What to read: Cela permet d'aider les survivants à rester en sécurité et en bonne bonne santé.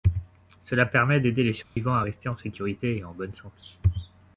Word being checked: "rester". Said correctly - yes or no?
yes